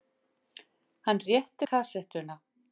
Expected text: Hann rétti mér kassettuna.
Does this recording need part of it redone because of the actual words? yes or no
yes